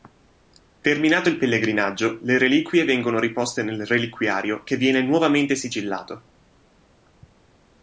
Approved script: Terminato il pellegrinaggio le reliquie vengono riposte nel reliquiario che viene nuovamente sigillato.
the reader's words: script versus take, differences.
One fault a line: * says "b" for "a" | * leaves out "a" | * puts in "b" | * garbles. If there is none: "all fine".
all fine